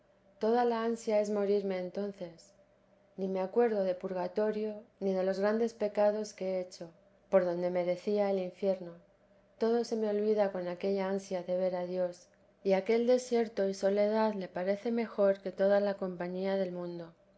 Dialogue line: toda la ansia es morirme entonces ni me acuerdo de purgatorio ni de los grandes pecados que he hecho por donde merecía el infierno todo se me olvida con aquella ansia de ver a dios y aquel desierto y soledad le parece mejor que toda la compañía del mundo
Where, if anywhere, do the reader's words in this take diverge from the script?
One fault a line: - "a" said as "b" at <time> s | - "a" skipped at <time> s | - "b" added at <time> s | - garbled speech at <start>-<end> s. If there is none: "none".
none